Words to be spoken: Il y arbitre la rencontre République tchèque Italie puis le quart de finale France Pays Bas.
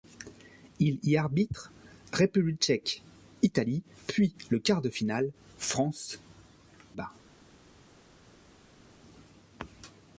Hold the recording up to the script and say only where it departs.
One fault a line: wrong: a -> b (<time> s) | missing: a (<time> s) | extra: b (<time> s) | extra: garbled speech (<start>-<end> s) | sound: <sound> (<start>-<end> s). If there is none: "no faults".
missing: la rencontre (1.7 s)
missing: Pays (6.2 s)